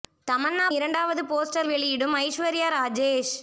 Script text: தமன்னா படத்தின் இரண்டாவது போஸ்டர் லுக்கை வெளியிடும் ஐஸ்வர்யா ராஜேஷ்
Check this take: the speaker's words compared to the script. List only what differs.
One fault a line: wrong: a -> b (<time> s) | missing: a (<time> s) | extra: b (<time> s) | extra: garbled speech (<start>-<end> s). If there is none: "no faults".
missing: படத்தின் (0.7 s)
missing: லுக்கை (1.7 s)